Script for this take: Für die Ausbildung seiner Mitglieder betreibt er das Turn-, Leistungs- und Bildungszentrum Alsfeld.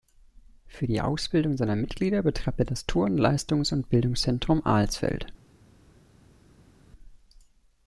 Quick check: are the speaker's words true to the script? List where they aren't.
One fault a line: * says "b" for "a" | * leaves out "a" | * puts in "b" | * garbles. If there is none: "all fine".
all fine